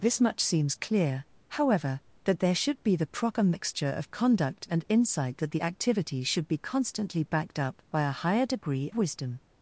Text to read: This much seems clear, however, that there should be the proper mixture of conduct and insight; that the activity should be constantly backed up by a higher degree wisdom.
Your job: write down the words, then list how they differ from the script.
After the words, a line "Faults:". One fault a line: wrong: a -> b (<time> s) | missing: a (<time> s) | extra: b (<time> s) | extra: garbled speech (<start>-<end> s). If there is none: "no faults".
This much seems clear, however, that there should be the proper mixture of conduct and insight; that the activity should be constantly backed up by a higher degree wisdom.
Faults:
no faults